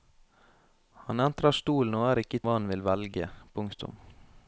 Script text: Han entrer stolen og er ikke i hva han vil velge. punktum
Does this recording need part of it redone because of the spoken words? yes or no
no